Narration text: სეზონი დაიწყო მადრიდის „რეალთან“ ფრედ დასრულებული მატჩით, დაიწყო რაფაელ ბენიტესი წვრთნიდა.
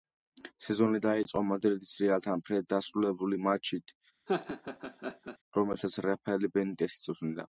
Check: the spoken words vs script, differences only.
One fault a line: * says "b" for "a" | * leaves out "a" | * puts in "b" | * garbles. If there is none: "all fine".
* says "რომელსაც" for "დაიწყო"